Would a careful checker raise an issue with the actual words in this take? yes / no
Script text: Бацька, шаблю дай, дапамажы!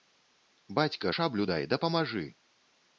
no